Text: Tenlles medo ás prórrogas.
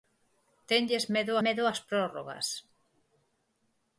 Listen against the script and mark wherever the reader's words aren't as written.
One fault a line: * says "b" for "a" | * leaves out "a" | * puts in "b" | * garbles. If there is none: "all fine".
* puts in "medo"